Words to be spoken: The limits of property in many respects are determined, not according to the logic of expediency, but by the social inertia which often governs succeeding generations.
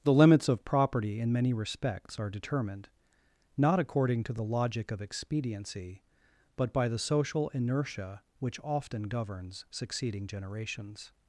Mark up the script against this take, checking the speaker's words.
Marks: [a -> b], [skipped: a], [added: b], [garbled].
The limits of property in many respects are determined, not according to the logic of expediency, but by the social inertia which often governs succeeding generations.